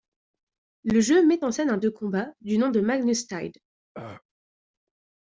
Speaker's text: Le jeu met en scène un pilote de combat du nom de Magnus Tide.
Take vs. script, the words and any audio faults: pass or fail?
fail